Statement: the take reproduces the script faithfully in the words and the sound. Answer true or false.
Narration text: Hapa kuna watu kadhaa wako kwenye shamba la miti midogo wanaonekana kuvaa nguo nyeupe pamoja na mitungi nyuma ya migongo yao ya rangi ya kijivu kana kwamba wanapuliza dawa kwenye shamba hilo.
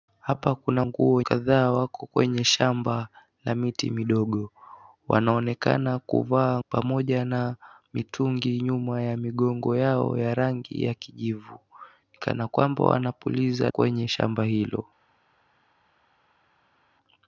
false